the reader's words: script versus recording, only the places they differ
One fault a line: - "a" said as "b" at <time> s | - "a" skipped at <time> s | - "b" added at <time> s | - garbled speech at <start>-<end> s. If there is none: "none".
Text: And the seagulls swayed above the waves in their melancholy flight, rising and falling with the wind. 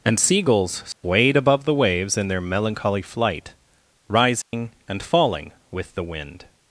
- "the" skipped at 0.2 s